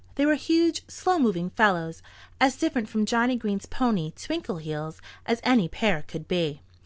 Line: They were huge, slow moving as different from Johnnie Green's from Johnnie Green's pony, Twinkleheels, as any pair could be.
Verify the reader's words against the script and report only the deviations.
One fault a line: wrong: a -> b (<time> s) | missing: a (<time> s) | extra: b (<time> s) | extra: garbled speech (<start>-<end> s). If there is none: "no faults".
extra: fellows (1.5 s)
missing: from Johnnie Green's (3.7 s)